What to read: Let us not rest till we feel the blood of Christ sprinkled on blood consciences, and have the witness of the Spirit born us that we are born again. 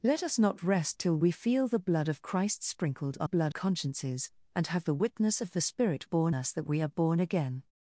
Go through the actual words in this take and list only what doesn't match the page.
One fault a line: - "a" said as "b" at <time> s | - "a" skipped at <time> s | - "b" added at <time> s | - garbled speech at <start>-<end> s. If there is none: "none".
none